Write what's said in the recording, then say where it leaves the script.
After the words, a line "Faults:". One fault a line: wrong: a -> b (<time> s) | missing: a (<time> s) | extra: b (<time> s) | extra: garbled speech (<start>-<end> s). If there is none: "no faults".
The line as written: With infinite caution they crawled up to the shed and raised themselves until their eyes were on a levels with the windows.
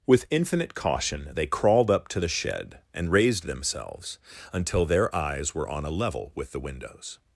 With infinite caution they crawled up to the shed and raised themselves until their eyes were on a level with the windows.
Faults:
wrong: levels -> level (5.9 s)